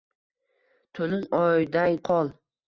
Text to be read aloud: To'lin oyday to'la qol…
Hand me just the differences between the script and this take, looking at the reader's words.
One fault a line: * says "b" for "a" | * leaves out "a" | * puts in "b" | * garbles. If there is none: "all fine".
* leaves out "to'la"